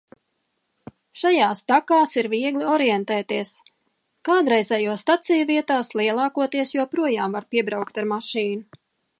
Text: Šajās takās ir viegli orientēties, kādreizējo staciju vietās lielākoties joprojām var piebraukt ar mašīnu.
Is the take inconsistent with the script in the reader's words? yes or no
no